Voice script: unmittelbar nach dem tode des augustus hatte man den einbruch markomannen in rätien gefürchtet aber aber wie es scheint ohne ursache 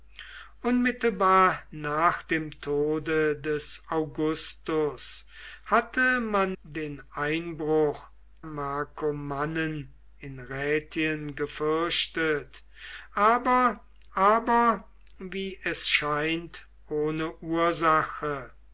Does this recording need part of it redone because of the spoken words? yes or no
no